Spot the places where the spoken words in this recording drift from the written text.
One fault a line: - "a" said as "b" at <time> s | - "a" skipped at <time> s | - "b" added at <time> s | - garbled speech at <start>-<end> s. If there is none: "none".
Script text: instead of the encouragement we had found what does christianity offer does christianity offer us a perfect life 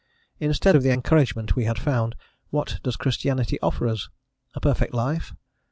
- "does christianity offer" skipped at 3.9 s